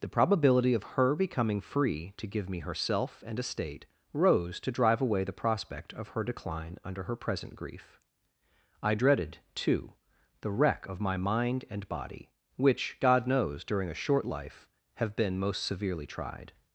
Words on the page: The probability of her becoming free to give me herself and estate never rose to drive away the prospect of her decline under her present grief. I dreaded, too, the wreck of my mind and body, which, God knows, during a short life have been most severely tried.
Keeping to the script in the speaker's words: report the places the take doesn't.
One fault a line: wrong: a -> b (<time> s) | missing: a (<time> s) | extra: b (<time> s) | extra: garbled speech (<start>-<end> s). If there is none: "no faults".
missing: never (3.9 s)